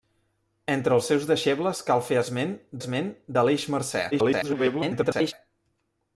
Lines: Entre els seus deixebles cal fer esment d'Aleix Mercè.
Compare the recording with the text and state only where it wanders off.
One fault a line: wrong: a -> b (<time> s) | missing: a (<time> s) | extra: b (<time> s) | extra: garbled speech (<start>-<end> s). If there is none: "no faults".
extra: esment (2.8 s)
extra: garbled speech (4.1-5.3 s)